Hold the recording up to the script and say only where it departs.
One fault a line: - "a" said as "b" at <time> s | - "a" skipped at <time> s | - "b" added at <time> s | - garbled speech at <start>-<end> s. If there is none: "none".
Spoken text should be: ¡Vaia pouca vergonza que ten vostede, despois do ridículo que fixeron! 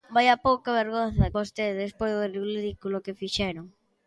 - "que ten" skipped at 1.3 s